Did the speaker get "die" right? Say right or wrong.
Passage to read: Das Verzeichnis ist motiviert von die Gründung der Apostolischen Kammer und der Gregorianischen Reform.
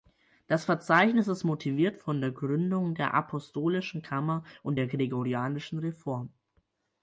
wrong